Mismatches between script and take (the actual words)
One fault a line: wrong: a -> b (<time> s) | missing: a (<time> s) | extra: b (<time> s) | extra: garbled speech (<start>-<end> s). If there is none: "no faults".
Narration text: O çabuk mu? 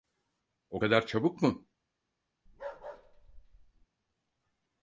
extra: kadar (0.8 s)